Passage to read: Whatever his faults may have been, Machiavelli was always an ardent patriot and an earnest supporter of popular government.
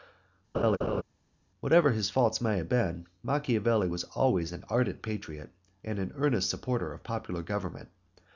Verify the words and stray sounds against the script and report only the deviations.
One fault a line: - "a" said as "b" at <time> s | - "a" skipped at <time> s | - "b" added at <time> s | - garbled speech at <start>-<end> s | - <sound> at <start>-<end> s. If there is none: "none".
- laugh at 0.5-1.0 s